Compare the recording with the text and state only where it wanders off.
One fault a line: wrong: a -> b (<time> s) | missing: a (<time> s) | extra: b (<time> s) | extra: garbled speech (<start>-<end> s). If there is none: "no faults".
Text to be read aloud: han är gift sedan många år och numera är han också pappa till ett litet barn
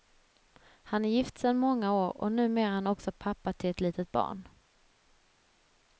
no faults